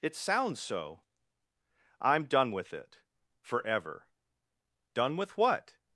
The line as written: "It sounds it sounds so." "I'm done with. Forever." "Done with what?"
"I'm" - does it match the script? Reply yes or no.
yes